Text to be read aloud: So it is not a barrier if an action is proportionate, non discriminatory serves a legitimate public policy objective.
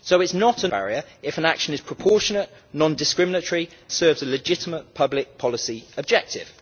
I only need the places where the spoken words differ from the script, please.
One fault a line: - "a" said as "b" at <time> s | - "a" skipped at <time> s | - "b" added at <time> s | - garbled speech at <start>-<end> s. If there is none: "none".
none